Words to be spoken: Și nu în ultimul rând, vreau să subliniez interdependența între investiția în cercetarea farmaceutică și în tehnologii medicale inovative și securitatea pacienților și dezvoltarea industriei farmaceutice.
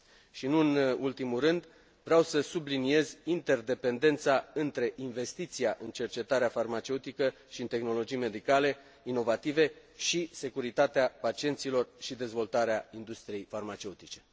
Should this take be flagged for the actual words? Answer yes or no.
no